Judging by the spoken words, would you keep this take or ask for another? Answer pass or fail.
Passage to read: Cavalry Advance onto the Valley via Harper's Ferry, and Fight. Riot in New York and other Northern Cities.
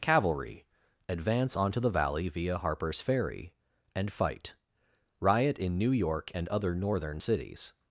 pass